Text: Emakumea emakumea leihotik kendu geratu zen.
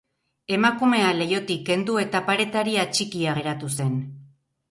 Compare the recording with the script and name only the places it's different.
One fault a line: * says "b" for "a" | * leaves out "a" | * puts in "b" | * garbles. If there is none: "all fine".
* leaves out "emakumea"
* puts in "eta paretari atxikia"